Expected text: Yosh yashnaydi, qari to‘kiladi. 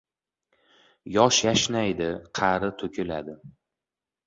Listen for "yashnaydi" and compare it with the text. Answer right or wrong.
right